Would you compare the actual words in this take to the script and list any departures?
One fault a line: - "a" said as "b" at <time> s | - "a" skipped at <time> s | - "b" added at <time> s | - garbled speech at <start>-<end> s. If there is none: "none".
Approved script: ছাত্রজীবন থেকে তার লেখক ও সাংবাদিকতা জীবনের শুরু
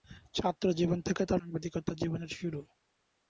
- "লেখক ও" skipped at 1.4 s